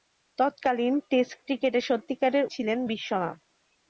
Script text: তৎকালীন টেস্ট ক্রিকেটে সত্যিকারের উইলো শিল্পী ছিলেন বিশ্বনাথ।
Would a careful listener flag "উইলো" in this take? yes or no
yes